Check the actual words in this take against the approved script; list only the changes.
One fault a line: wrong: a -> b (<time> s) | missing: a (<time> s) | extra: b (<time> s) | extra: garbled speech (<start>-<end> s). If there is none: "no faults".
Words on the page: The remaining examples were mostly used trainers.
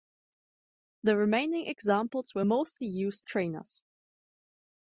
no faults